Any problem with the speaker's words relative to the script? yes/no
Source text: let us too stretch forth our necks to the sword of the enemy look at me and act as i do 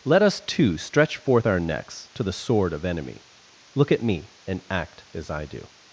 yes